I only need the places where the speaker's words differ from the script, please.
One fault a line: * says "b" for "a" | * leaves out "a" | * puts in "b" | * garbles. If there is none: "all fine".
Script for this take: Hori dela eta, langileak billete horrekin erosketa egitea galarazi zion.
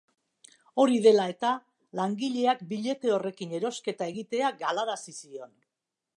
all fine